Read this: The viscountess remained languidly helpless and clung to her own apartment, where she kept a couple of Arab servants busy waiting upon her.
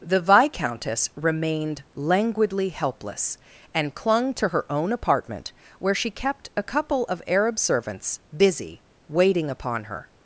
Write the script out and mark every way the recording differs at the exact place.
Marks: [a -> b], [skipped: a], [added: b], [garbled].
The viscountess remained languidly helpless and clung to her own apartment, where she kept a couple of Arab servants busy waiting upon her.